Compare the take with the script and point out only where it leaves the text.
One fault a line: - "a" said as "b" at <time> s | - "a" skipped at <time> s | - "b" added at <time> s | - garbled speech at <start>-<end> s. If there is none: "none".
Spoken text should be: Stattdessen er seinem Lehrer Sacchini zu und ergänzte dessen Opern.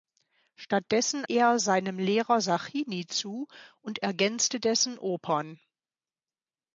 none